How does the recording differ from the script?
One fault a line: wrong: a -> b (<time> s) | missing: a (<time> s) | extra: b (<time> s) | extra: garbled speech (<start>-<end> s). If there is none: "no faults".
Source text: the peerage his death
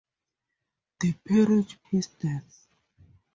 no faults